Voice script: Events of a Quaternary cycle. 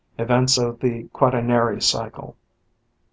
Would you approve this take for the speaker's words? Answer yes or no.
no